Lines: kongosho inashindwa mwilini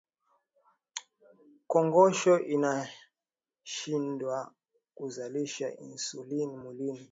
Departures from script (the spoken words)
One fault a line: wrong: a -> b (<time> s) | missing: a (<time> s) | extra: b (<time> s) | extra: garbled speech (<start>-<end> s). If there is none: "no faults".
extra: kuzalisha insulini (5.0 s)